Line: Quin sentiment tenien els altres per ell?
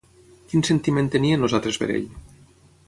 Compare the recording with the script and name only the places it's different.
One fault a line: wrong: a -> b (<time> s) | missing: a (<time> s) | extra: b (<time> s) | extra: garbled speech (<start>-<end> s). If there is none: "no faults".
no faults